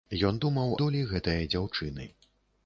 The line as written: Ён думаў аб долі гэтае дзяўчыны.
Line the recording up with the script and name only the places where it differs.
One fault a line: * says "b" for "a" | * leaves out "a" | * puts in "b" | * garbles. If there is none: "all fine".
* leaves out "аб"